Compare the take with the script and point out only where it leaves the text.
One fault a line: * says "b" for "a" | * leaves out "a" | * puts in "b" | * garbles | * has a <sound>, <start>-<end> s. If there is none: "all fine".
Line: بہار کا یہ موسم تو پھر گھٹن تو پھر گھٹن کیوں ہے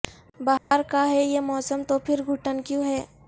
* has a dropout, 0.6-0.7 s
* puts in "ہے"
* leaves out "تو پھر گھٹن"